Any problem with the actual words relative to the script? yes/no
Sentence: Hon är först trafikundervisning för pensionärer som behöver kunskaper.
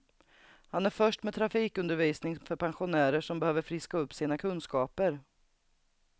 yes